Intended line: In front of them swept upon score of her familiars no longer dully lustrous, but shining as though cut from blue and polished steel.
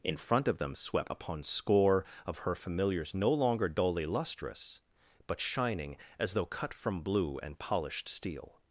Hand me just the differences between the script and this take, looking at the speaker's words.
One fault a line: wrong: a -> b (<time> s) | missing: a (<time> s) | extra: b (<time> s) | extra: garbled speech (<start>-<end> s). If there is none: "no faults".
no faults